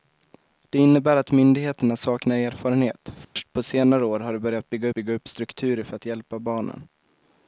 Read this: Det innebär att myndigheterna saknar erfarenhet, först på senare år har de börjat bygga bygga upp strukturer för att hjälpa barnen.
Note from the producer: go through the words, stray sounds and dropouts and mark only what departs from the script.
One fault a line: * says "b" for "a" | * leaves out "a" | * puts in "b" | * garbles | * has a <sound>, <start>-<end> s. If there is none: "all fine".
* has a dropout, 3.2-3.4 s